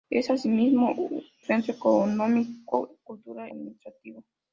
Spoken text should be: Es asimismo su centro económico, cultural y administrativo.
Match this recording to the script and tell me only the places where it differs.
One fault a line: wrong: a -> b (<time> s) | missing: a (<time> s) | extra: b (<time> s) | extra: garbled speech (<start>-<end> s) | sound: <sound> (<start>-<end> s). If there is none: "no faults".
missing: su (0.9 s)
missing: y (3.5 s)